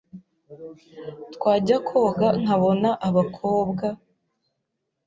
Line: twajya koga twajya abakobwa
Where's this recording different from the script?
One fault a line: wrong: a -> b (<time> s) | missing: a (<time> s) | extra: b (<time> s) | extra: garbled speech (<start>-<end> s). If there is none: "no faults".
wrong: twajya -> nkabona (2.4 s)